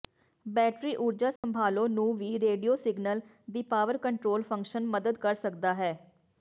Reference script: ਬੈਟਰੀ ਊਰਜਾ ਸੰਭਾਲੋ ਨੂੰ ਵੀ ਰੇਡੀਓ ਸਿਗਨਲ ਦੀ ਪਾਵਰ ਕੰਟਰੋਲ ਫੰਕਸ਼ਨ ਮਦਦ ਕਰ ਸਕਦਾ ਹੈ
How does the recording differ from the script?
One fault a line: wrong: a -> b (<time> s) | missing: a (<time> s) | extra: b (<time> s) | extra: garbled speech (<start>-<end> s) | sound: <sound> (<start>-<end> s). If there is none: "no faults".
sound: dropout (1.4-1.4 s)